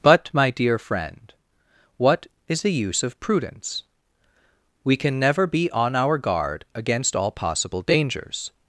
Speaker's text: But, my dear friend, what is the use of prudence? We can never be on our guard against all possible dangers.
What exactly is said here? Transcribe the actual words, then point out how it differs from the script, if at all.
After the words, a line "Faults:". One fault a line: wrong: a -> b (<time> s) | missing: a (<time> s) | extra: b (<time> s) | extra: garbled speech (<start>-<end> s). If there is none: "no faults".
But, my dear friend, what is the use of prudence? We can never be on our guard against all possible dangers.
Faults:
no faults